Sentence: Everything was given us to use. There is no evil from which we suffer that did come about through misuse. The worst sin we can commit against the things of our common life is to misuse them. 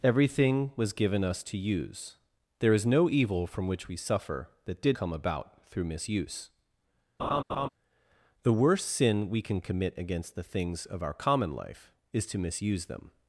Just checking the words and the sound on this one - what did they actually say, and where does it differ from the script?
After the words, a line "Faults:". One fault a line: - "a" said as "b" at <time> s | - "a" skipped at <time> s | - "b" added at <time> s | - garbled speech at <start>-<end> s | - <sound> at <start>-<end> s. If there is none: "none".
Everything was given us to use. There is no evil from which we suffer that did come about through misuse. The worst sin we can commit against the things of our common life is to misuse them.
Faults:
- laugh at 7.2-7.7 s